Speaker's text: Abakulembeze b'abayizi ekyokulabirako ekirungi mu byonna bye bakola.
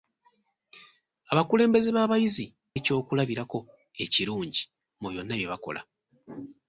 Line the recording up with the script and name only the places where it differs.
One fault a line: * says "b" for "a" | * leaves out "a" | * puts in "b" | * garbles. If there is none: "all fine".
all fine